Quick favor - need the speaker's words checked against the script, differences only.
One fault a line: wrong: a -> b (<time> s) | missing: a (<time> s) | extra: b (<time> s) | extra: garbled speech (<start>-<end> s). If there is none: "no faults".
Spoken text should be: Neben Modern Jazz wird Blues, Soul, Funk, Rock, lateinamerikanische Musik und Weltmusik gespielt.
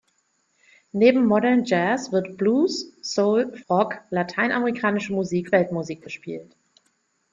missing: Funk (3.5 s)
missing: und (5.5 s)